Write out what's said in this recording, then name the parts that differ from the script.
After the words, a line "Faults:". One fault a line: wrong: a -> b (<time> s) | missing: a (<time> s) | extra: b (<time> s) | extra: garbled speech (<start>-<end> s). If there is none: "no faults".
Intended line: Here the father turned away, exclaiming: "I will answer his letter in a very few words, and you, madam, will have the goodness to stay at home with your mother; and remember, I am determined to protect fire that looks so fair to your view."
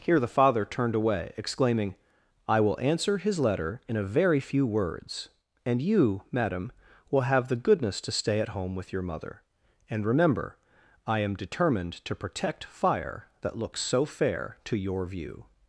Here the father turned away, exclaiming: "I will answer his letter in a very few words, and you, madam, will have the goodness to stay at home with your mother; and remember, I am determined to protect fire that looks so fair to your view."
Faults:
no faults